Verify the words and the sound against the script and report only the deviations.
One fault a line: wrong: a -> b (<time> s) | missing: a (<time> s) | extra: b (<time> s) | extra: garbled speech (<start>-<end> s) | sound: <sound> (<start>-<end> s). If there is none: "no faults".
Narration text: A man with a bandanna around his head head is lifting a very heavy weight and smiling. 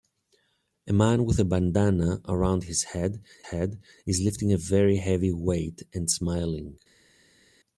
no faults